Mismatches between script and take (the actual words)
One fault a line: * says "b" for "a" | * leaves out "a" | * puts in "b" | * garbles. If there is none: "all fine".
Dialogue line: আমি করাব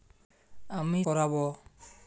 all fine